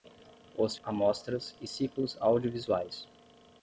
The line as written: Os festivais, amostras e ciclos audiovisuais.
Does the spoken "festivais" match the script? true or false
false